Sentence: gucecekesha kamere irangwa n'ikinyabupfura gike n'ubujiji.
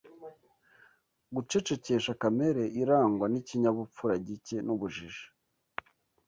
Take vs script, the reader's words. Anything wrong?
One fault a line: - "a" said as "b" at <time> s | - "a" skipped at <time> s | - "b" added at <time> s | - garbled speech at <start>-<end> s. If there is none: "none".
none